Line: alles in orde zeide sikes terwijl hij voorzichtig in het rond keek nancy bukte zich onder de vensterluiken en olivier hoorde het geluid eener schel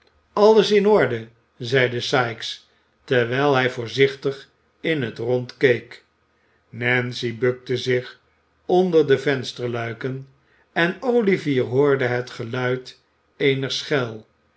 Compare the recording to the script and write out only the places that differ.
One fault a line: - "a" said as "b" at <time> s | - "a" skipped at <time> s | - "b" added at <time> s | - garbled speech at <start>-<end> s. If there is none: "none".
none